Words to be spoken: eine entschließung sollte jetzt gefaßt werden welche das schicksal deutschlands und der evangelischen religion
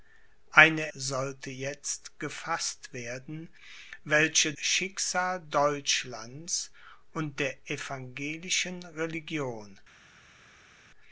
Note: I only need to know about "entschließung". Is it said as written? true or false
false